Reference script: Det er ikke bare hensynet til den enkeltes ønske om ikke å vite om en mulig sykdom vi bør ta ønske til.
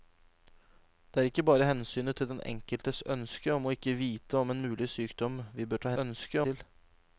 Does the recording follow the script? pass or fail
pass